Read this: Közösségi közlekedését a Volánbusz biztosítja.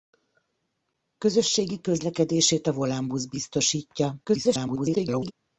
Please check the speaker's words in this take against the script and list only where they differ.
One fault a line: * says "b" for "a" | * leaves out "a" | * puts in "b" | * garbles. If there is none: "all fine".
* garbles